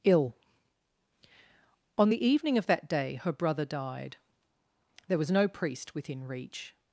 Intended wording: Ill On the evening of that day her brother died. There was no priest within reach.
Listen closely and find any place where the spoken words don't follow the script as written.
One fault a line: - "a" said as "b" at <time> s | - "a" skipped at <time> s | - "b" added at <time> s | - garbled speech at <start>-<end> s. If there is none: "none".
none